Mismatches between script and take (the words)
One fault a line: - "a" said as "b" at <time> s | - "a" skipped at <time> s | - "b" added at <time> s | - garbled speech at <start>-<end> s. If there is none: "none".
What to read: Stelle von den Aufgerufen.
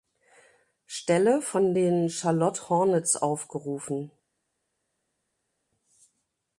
- "Charlotte Hornets" added at 2.1 s